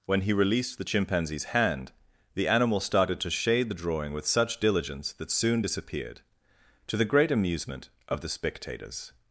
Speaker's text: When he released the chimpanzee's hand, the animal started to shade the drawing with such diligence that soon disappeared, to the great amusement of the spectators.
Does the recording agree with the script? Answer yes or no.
yes